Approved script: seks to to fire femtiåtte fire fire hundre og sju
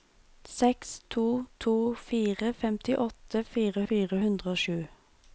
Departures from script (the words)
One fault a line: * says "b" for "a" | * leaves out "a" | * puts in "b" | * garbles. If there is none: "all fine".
all fine